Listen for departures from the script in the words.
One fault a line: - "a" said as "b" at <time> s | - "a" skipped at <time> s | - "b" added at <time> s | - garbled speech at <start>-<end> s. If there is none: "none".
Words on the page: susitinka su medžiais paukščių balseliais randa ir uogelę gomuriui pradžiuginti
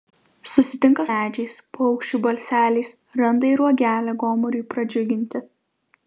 - "su" skipped at 1.0 s